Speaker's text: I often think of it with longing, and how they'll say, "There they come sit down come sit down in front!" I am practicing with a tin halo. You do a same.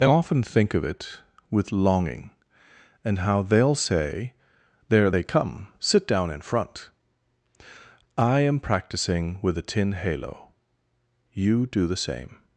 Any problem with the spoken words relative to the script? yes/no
yes